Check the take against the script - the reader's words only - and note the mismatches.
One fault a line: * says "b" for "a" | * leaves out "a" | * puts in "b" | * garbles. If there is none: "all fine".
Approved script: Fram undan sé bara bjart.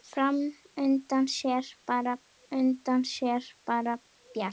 * puts in "undan sé bara"